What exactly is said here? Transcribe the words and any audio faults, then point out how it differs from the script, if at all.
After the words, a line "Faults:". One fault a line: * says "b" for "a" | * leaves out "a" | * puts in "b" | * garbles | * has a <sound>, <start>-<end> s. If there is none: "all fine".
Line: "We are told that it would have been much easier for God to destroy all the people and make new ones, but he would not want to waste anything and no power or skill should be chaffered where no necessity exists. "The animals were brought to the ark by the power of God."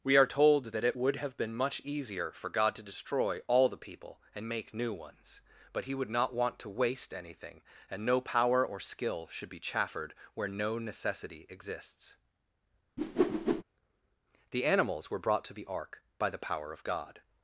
"We are told that it would have been much easier for God to destroy all the people and make new ones, but he would not want to waste anything and no power or skill should be chaffered where no necessity exists. "The animals were brought to the ark by the power of God."
Faults:
* has a whoosh, 13.0-13.6 s